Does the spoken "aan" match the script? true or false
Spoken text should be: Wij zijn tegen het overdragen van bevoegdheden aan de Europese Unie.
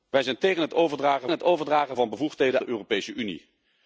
false